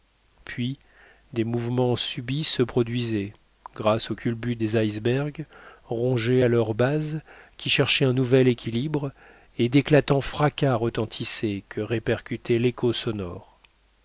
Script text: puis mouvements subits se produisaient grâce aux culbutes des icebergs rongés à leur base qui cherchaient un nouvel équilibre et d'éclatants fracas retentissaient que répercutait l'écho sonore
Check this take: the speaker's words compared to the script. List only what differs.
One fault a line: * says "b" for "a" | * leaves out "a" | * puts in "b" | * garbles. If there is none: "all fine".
* puts in "des"